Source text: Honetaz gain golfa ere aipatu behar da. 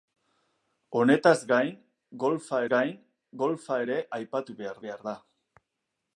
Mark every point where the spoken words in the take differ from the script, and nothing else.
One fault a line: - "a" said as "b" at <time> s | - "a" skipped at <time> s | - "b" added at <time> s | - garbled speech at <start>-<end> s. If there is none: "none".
- "gain golfa" added at 2.7 s
- "behar" added at 4.9 s